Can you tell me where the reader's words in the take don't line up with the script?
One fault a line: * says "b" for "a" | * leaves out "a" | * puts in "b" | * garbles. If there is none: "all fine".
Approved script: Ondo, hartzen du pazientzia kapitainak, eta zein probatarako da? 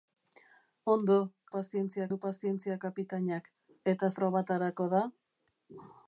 * says "pazientzia" for "hartzen"
* leaves out "zein"